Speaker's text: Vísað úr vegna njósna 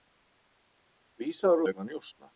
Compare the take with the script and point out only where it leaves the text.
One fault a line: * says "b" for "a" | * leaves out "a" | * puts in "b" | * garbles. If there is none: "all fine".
all fine